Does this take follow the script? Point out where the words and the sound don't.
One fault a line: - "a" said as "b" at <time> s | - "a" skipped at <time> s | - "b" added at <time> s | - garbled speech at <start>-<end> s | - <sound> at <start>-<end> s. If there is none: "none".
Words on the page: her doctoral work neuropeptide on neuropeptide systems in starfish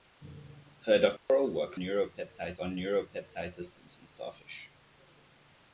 - dropout at 1.2-1.3 s